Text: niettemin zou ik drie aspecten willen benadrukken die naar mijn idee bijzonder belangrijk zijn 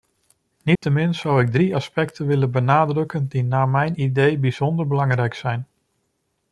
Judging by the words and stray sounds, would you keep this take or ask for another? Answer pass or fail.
fail